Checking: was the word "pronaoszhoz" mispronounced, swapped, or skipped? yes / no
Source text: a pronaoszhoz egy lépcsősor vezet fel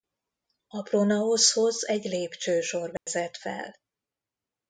no